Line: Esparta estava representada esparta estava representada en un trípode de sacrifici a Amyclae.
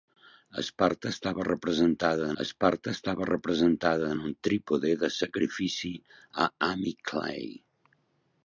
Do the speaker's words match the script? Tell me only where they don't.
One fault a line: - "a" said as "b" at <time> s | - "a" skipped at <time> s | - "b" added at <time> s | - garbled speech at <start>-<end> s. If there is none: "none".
none